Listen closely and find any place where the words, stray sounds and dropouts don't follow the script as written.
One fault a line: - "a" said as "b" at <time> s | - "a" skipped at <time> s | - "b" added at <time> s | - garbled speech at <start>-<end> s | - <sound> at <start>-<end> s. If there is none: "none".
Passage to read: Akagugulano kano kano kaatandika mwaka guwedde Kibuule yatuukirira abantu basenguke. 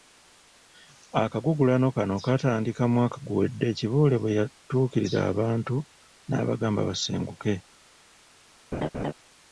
- "kano" skipped at 2.1 s
- "bwe" added at 4.2 s
- "n'abagamba" added at 6.3 s
- laugh at 8.7-9.1 s